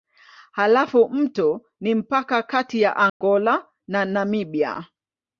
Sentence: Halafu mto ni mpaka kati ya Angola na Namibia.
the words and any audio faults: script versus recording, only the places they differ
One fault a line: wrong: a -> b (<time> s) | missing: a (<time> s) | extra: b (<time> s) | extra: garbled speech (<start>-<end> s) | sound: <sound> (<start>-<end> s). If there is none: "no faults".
sound: dropout (3.1-3.2 s)